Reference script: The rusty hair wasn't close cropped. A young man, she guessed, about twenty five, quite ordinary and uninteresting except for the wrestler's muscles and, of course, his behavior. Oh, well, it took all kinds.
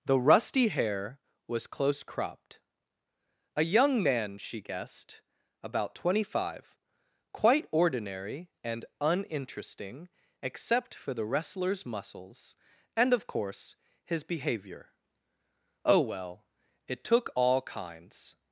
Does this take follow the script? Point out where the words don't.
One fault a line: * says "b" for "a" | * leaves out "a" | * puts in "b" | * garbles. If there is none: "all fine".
* says "was" for "wasn't"